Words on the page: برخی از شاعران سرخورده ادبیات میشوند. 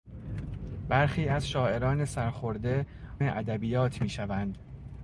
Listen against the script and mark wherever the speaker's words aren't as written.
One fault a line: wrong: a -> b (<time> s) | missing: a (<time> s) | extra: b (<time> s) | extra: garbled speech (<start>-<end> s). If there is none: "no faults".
no faults